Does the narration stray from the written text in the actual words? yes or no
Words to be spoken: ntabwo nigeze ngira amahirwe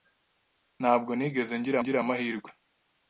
yes